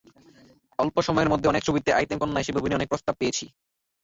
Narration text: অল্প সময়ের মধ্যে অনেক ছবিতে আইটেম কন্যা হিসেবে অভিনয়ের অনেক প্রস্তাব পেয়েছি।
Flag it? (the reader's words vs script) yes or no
no